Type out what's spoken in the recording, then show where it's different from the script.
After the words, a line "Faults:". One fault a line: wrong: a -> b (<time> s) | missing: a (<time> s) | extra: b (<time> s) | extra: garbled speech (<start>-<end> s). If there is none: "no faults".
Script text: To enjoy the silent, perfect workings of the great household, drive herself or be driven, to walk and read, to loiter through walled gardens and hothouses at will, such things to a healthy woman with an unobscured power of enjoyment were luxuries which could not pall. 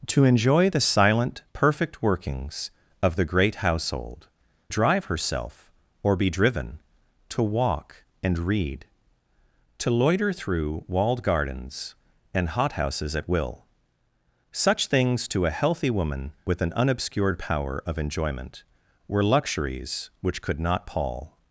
To enjoy the silent, perfect workings of the great household, drive herself or be driven, to walk and read, to loiter through walled gardens and hothouses at will, such things to a healthy woman with an unobscured power of enjoyment were luxuries which could not pall.
Faults:
no faults